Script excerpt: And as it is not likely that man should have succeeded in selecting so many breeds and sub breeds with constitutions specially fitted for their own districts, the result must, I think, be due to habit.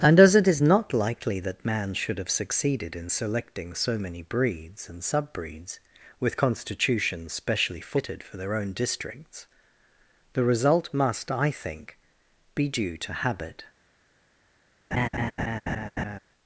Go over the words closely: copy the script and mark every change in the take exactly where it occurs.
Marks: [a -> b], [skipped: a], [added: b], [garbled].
And as it is not likely that man should have succeeded in selecting so many breeds and sub breeds with constitutions specially fitted for their own districts, the result must, I think, be due to habit.